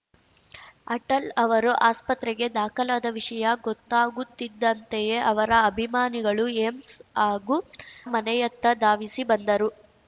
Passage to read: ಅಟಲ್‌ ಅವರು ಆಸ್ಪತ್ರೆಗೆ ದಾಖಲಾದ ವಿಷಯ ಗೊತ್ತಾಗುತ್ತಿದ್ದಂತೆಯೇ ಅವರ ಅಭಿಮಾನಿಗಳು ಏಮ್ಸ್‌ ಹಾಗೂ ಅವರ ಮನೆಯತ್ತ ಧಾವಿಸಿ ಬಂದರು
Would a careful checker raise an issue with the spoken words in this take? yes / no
yes